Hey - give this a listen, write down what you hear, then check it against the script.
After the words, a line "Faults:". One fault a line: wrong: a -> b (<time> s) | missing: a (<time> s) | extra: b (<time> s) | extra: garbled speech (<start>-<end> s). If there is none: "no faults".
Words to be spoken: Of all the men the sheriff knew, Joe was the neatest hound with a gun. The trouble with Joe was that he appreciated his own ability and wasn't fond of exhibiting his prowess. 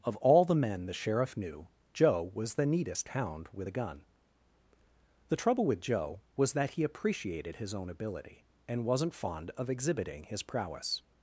Of all the men the sheriff knew, Joe was the neatest hound with a gun. The trouble with Joe was that he appreciated his own ability and wasn't fond of exhibiting his prowess.
Faults:
no faults